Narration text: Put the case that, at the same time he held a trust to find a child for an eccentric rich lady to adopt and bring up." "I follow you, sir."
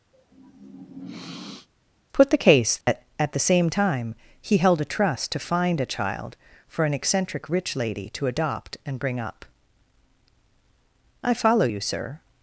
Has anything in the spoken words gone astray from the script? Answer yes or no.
no